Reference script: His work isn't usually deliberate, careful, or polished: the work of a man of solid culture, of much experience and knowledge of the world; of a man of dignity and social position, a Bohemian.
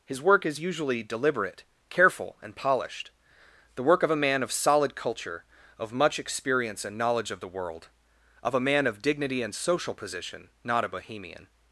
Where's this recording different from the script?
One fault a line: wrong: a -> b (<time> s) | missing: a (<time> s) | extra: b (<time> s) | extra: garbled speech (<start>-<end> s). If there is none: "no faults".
wrong: isn't -> is (0.5 s)
wrong: or -> and (2.4 s)
extra: not (10.6 s)